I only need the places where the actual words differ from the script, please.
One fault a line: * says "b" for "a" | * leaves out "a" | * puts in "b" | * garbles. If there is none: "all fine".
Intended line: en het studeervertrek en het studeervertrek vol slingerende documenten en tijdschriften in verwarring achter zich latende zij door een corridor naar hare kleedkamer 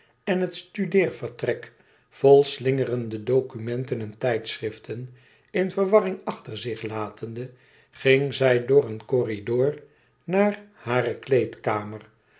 * leaves out "en het studeervertrek"
* puts in "ging"